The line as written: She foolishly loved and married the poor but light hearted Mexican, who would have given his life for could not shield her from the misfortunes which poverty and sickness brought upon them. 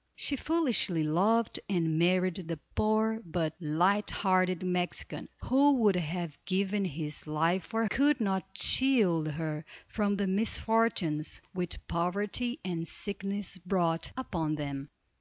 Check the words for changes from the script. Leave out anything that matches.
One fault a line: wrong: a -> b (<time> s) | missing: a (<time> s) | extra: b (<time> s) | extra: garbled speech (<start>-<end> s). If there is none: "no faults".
no faults